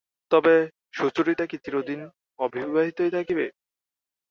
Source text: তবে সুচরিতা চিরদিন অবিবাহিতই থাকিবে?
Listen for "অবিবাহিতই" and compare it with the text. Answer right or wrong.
right